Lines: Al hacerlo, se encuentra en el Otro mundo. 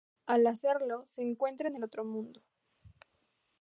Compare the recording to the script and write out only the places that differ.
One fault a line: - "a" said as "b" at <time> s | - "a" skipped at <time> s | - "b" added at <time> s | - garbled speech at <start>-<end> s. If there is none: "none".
none